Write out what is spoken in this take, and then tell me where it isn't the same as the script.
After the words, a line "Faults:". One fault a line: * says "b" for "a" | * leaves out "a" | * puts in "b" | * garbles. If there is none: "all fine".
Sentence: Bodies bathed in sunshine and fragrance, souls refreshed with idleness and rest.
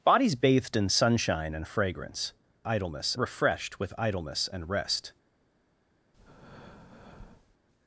Bodies bathed in sunshine and fragrance, idleness refreshed with idleness and rest.
Faults:
* says "idleness" for "souls"